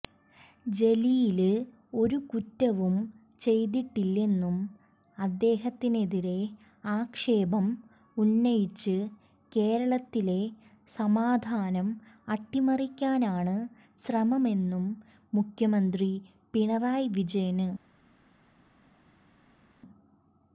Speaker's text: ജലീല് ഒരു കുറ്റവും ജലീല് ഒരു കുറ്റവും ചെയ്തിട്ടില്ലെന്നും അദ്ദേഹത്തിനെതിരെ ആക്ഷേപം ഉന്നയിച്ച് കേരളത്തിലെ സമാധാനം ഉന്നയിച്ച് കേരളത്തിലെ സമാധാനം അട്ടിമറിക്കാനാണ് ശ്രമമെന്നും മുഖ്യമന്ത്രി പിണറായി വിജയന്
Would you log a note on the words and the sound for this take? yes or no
yes